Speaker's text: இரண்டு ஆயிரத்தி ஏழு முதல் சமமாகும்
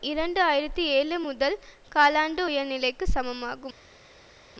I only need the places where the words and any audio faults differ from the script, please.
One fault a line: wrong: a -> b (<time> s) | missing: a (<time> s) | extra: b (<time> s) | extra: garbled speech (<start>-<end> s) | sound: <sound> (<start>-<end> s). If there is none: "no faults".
extra: காலாண்டு உயர்நிலைக்கு (1.9 s)